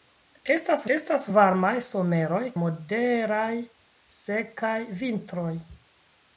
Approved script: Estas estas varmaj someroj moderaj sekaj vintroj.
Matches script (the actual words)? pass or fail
pass